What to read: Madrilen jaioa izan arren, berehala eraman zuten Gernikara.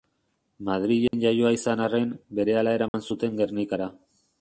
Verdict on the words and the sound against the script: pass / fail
fail